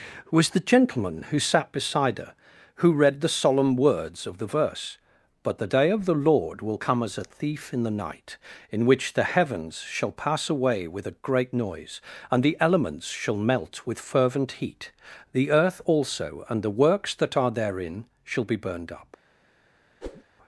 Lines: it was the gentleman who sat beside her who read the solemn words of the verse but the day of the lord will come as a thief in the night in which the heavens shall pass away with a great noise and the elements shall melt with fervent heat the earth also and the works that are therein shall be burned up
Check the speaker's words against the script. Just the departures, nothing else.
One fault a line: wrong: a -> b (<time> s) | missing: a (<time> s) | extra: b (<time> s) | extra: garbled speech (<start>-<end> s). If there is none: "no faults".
missing: it (0.3 s)